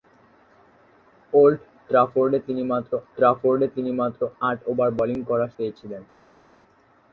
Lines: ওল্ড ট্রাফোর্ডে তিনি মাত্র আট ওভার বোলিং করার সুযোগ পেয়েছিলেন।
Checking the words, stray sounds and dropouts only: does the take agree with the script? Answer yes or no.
no